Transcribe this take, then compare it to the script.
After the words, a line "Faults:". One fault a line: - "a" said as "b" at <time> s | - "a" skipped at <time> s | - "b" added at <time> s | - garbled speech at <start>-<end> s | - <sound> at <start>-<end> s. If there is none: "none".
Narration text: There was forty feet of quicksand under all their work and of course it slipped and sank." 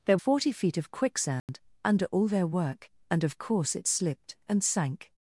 There forty feet of quicksand under all their work and of course it slipped and sank."
Faults:
- "was" skipped at 0.2 s
- dropout at 1.4-1.5 s